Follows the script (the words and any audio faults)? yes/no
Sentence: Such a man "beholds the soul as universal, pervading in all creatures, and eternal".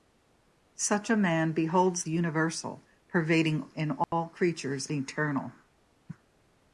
no